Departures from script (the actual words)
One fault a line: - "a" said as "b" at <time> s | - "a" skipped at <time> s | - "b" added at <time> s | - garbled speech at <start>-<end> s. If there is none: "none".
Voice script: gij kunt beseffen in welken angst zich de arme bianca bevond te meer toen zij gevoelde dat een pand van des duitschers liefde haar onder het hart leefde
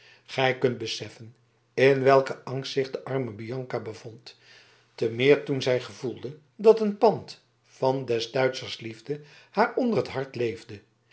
none